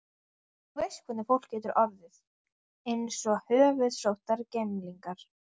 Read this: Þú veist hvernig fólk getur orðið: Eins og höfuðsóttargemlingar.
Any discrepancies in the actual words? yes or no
no